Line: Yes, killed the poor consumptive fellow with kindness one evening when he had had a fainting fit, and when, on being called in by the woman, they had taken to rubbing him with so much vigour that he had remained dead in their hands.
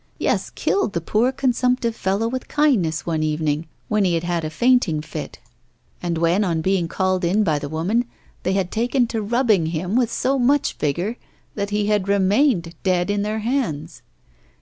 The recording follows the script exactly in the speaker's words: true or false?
true